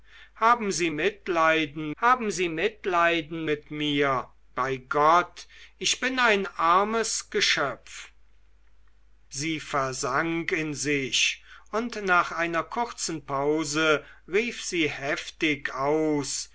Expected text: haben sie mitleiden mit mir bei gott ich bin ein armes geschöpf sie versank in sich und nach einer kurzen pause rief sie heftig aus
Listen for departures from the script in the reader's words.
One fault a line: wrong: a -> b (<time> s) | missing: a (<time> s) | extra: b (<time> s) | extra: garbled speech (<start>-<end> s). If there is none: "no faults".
extra: haben sie mitleiden (2.0 s)